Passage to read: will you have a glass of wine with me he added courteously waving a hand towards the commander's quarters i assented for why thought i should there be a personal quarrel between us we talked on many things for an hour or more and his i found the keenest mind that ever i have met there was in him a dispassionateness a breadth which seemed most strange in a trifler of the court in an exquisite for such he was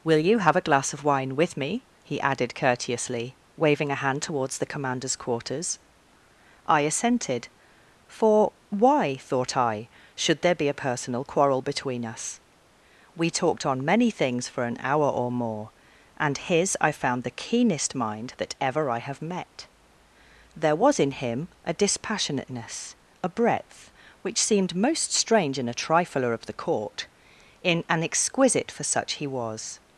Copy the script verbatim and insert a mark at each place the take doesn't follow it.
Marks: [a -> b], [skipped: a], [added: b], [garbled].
will you have a glass of wine with me he added courteously waving a hand towards the commander's quarters i assented for why thought i should there be a personal quarrel between us we talked on many things for an hour or more and his i found the keenest mind that ever i have met there was in him a dispassionateness a breadth which seemed most strange in a trifler of the court in an exquisite for such he was